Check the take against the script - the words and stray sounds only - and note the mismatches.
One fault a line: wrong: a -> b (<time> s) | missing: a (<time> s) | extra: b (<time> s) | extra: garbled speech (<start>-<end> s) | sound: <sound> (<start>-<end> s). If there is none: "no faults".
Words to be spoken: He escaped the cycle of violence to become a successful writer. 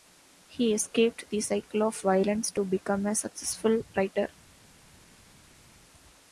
no faults